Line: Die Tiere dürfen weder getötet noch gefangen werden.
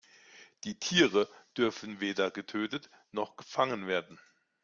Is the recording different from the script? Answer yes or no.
no